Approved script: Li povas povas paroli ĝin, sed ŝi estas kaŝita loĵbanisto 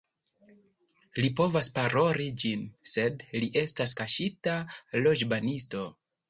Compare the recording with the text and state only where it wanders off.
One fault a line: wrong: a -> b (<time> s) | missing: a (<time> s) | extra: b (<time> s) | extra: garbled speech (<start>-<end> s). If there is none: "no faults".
missing: povas (1.7 s)
wrong: ŝi -> li (3.4 s)